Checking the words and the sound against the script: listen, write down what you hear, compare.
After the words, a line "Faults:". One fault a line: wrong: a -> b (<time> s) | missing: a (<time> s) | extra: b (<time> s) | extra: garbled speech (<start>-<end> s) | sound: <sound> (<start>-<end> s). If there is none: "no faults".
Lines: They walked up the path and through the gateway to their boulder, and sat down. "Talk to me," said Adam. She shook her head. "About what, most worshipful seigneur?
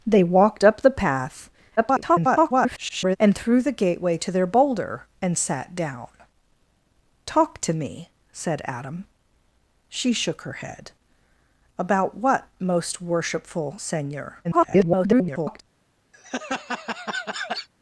They walked up the path [garbled] and through the gateway to their boulder, and sat down. "Talk to me," said Adam. She shook her head. "About what, most worshipful seigneur? [garbled]
Faults:
extra: garbled speech (1.8-3.2 s)
extra: garbled speech (14.4-15.6 s)
sound: laugh (16.1-17.7 s)